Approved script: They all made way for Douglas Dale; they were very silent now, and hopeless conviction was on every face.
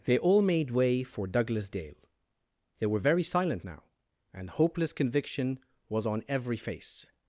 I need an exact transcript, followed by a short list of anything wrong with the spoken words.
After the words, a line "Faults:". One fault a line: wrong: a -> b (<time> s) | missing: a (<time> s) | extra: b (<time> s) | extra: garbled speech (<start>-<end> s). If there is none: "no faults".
They all made way for Douglas Dale; they were very silent now, and hopeless conviction was on every face.
Faults:
no faults